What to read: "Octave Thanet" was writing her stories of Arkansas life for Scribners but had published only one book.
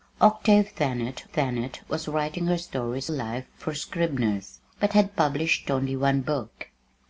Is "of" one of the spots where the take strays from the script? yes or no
yes